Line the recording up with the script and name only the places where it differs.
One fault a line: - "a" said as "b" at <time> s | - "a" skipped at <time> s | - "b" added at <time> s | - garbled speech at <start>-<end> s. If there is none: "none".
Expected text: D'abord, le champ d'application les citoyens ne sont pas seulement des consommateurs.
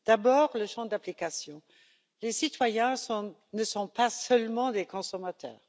none